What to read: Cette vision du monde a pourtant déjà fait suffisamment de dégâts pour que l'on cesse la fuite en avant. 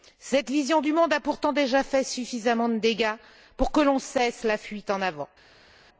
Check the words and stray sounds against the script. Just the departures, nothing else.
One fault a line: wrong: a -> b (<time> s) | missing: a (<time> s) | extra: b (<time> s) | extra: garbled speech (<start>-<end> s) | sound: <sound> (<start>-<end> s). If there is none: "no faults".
no faults